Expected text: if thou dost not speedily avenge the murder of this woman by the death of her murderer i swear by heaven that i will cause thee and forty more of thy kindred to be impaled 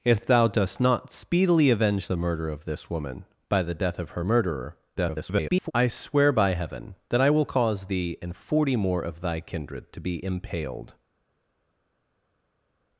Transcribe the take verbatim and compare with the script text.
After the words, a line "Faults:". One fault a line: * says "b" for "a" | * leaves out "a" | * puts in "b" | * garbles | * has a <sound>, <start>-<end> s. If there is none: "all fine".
if thou dost not speedily avenge the murder of this woman by the death of her murderer [garbled] i swear by heaven that i will cause thee and forty more of thy kindred to be impaled
Faults:
* garbles